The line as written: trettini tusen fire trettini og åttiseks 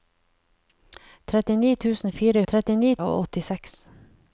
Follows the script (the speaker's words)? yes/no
yes